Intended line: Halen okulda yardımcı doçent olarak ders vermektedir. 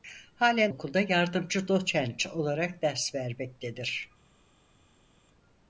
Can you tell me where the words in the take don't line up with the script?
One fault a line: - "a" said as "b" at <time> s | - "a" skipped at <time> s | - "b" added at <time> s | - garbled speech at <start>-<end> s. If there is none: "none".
none